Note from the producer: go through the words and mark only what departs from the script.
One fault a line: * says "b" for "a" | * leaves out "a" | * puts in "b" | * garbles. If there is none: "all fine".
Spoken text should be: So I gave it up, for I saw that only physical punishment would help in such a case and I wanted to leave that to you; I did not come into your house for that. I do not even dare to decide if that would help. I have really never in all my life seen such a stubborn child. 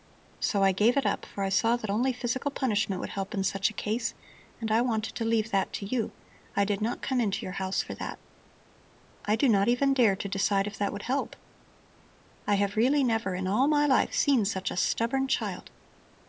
all fine